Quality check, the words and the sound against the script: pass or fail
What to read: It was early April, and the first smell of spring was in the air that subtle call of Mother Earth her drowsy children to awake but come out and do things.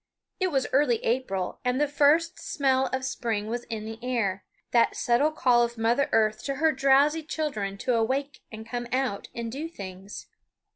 fail